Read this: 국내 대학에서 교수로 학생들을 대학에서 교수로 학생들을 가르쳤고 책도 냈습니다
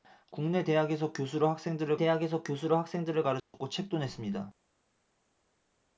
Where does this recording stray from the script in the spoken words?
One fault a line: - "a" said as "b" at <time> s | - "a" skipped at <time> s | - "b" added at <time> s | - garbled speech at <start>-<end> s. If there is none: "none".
none